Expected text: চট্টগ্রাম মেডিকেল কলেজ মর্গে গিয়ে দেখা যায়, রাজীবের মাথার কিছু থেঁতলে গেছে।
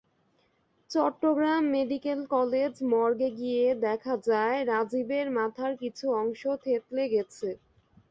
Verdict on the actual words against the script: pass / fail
fail